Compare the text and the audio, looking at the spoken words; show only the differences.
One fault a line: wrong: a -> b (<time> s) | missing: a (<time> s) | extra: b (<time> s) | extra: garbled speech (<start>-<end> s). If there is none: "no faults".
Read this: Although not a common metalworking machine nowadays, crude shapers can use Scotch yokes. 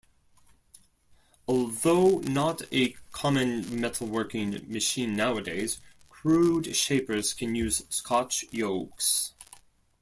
no faults